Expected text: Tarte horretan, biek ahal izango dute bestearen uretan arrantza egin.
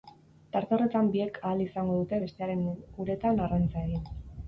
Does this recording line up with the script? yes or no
yes